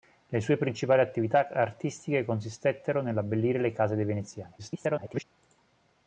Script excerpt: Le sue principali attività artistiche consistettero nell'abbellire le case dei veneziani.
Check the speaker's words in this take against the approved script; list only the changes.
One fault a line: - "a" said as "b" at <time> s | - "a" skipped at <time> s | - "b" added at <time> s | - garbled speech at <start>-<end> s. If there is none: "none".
- garbled speech at 4.6-5.2 s